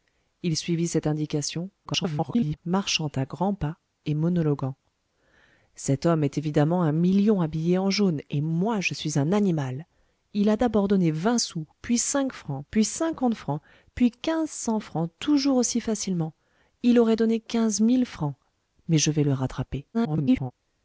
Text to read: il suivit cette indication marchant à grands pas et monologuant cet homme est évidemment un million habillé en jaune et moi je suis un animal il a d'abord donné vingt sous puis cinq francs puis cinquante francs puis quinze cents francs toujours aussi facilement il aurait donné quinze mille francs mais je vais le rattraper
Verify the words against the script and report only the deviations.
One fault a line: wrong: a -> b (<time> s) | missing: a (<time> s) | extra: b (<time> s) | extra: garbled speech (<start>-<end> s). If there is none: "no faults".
extra: garbled speech (1.8-2.6 s)
extra: garbled speech (19.9-20.5 s)